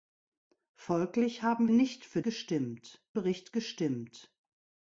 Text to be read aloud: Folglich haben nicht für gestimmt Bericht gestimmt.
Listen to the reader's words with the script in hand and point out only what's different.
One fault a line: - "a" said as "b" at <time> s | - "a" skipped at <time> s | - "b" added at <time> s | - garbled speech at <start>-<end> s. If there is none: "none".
none